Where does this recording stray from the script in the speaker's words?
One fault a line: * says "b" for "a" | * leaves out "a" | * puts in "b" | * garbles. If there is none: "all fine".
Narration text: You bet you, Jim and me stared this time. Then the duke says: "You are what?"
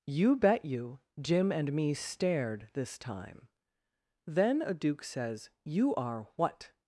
* says "a" for "the"